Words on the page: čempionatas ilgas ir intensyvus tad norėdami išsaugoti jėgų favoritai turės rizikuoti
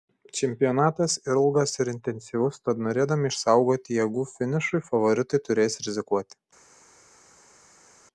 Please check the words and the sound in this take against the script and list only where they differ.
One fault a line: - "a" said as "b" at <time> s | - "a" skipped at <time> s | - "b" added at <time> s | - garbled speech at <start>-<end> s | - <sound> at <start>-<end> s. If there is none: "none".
- "finišui" added at 4.3 s